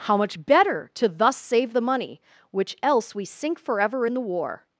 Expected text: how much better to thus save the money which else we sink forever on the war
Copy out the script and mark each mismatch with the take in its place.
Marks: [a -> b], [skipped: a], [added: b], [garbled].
how much better to thus save the money which else we sink forever [on -> in] the war